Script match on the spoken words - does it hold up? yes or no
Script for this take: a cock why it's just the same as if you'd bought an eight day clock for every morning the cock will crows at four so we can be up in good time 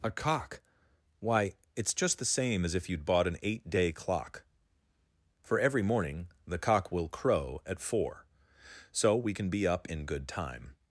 no